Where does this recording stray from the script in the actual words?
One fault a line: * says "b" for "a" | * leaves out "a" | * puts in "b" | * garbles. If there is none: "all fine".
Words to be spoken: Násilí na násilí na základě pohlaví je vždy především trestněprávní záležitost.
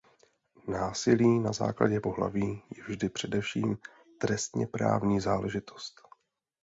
* leaves out "násilí na"